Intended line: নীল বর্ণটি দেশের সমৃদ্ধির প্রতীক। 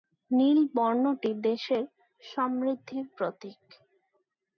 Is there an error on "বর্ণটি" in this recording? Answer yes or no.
no